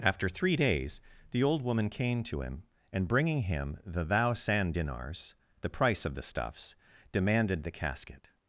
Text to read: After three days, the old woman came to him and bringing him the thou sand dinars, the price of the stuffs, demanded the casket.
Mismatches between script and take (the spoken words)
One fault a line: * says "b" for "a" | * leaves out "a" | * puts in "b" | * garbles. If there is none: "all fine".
all fine